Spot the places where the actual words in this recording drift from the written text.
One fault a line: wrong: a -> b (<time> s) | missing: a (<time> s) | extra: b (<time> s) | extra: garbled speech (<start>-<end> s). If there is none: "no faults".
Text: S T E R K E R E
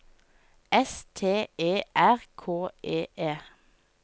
missing: R (3.1 s)